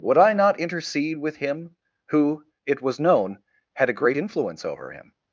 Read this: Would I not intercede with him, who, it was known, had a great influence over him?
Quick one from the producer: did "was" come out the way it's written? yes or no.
yes